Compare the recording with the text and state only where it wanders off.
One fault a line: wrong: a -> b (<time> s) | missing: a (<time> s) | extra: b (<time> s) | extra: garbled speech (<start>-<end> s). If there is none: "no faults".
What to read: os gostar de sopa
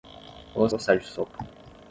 no faults